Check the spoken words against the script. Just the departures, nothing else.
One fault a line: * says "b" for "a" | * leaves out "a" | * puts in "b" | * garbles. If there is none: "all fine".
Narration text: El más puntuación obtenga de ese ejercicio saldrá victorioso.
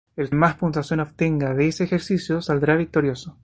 all fine